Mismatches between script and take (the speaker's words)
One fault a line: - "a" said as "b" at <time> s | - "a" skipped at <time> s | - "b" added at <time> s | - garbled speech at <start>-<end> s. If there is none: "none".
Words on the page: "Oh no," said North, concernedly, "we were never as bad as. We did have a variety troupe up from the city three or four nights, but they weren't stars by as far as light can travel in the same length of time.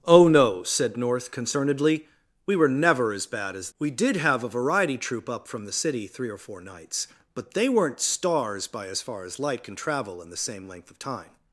none